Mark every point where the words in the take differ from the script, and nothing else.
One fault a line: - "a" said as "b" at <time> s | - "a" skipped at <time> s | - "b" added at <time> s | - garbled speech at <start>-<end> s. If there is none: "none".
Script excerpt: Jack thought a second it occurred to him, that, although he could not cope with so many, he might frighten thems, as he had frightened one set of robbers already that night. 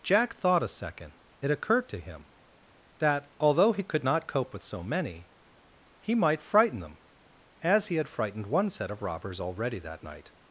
- "thems" said as "them" at 6.8 s